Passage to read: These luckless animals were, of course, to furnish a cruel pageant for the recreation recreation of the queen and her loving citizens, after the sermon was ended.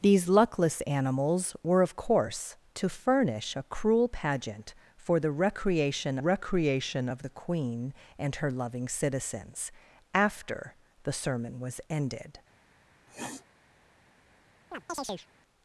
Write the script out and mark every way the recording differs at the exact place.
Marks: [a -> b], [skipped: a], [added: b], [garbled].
These luckless animals were, of course, to furnish a cruel pageant for the recreation recreation of the queen and her loving citizens, after the sermon was ended.